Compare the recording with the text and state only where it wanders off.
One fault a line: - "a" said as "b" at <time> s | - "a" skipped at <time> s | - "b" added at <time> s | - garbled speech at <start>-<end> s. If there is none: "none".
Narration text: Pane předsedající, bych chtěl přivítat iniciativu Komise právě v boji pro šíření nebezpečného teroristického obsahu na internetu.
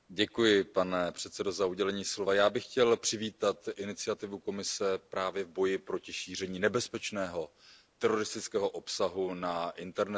- "já" added at 2.3 s
- "pro" said as "proti" at 5.8 s